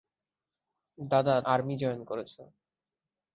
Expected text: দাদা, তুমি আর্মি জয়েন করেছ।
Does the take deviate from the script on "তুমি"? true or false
true